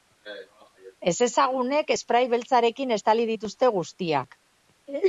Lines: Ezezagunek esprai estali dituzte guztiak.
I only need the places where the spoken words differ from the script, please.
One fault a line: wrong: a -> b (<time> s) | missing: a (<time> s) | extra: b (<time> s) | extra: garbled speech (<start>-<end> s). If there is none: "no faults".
extra: beltzarekin (2.3 s)